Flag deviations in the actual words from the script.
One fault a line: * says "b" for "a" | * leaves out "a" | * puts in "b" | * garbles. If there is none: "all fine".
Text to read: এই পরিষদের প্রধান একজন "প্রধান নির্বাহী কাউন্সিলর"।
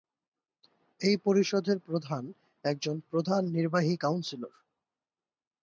all fine